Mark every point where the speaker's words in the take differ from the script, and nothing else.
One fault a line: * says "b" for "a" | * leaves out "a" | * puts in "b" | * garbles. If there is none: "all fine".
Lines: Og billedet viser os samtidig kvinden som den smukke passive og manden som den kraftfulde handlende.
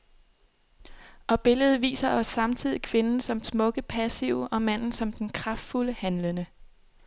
* leaves out "den"